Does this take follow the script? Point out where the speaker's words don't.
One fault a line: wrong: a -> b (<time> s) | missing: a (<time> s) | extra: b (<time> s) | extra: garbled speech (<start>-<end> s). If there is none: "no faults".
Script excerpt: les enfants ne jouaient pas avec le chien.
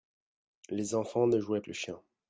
missing: pas avec (1.6 s)